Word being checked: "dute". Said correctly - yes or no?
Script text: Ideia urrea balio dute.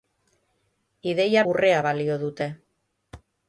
yes